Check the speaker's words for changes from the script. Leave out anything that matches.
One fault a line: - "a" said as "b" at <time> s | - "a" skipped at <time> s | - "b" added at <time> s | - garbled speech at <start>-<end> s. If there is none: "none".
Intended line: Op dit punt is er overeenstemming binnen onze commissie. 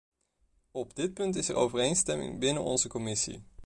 none